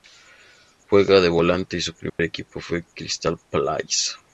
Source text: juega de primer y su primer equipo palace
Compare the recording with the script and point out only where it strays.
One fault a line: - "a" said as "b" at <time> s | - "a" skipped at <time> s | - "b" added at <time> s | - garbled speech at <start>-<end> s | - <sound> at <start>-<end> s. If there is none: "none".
- "primer" said as "volante" at 1.3 s
- dropout at 2.1-2.2 s
- "fue crystal" added at 2.6 s